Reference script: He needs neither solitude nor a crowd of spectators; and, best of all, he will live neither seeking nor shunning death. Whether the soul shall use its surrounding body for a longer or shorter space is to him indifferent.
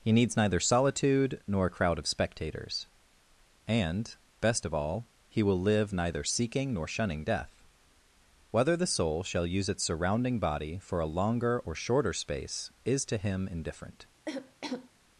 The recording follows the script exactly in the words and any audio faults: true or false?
false